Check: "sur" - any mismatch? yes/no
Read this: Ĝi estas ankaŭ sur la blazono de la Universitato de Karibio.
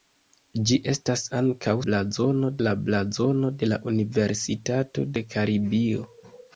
yes